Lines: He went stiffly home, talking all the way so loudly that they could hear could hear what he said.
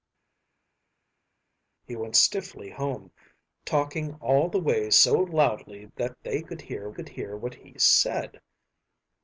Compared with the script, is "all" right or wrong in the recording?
right